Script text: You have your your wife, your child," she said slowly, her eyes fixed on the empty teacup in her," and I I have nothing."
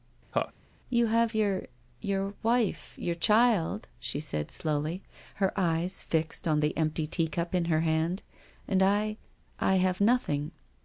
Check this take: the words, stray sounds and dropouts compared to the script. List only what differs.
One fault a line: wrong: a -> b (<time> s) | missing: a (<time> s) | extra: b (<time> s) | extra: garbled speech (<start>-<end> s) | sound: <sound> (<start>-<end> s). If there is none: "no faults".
sound: laugh (0.3-0.5 s)
extra: hand (7.8 s)